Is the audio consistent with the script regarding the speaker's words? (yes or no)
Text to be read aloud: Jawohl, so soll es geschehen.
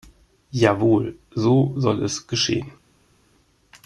yes